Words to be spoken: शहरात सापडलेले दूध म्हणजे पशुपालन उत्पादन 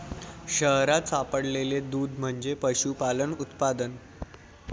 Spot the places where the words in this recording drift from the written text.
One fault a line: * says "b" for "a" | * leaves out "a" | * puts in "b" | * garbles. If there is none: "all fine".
all fine